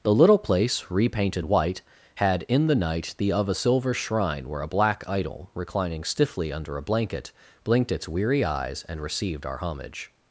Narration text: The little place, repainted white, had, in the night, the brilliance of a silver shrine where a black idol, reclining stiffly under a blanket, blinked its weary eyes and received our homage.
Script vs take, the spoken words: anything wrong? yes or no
yes